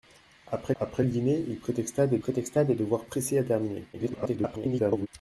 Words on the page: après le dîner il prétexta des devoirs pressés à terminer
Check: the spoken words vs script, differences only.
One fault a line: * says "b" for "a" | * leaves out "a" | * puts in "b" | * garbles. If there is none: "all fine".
* puts in "après"
* puts in "prétexta des"
* garbles